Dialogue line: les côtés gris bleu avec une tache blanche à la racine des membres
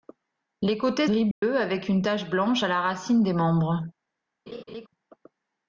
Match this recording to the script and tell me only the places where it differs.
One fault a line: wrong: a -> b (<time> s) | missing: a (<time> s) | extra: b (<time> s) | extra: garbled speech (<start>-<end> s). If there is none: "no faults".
no faults